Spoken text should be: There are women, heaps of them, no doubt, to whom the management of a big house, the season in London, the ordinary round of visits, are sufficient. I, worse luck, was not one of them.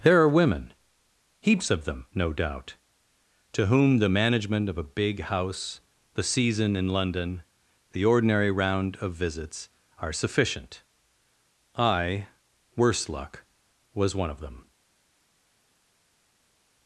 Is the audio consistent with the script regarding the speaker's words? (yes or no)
no